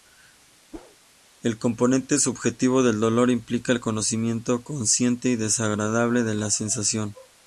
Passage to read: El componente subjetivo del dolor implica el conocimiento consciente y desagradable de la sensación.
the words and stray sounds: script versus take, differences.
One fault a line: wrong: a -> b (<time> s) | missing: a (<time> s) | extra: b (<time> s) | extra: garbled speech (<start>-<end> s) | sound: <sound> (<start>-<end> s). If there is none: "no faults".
sound: whoosh (0.7-1.0 s)